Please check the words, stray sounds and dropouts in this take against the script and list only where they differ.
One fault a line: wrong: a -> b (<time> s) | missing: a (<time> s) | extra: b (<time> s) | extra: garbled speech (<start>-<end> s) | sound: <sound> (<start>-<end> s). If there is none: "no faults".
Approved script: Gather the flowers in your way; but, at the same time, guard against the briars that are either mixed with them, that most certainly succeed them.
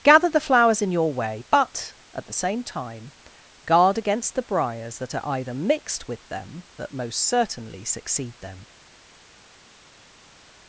no faults